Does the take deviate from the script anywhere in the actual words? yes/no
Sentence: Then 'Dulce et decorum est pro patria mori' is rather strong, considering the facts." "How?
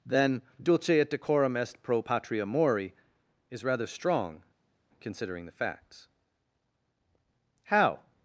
no